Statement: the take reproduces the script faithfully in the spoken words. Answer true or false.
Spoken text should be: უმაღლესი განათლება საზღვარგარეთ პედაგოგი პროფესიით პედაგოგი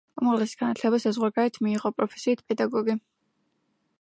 false